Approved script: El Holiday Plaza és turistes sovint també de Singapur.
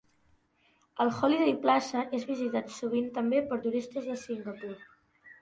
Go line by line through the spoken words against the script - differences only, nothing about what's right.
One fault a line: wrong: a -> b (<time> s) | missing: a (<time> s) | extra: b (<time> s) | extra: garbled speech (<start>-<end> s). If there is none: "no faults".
wrong: turistes -> visitat (2.3 s)
extra: per turistes (3.5 s)